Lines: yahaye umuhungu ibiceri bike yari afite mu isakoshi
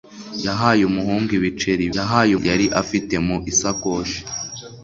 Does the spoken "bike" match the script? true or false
false